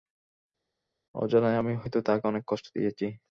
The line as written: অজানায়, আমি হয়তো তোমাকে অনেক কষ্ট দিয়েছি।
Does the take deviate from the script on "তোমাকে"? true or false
true